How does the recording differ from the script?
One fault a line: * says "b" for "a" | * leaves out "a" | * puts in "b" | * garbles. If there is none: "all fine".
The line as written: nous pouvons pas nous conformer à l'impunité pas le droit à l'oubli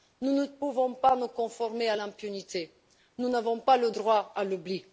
* puts in "ne"
* puts in "nous n'avons"